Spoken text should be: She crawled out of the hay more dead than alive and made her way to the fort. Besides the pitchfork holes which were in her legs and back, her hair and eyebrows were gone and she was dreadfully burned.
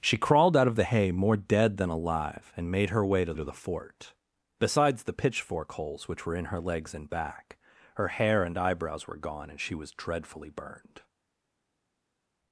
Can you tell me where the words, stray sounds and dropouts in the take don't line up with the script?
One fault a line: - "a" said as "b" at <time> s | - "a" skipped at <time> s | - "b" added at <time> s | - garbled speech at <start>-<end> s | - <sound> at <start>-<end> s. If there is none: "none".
- "to" added at 3.3 s